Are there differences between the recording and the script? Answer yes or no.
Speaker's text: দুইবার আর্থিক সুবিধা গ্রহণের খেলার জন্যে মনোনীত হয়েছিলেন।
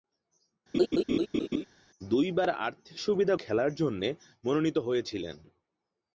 yes